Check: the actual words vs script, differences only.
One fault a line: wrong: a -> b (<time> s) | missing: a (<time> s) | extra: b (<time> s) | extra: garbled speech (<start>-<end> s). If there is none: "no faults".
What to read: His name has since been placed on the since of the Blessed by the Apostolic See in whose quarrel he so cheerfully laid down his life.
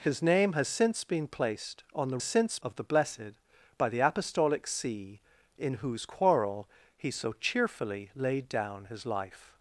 no faults